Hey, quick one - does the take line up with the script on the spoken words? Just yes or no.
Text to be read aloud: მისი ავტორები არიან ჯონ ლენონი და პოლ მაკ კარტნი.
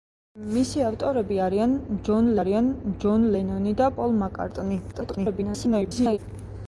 no